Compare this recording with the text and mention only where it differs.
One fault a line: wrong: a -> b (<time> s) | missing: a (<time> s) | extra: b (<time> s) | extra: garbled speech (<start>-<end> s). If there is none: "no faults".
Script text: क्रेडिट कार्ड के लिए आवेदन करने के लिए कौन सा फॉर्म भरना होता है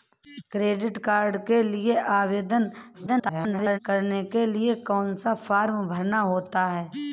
extra: garbled speech (2.9-3.8 s)